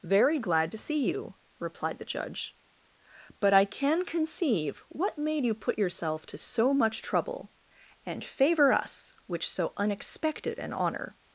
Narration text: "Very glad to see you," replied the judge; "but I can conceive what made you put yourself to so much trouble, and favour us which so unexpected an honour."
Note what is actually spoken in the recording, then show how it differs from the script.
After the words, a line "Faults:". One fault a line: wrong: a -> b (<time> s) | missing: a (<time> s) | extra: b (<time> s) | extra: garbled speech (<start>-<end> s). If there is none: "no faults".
"Very glad to see you," replied the judge; "but I can conceive what made you put yourself to so much trouble, and favour us which so unexpected an honour."
Faults:
no faults